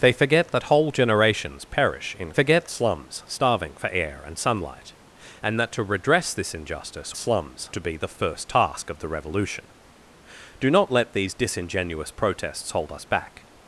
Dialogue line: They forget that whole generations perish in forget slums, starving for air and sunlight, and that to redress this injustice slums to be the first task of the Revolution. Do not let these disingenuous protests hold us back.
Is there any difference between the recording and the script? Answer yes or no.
no